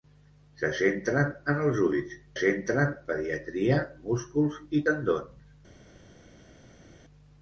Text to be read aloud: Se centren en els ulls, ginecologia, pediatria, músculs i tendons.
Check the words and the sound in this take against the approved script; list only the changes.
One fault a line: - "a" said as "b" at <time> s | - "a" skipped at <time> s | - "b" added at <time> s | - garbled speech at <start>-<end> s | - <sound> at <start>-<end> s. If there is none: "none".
- "ginecologia" said as "centren" at 2.4 s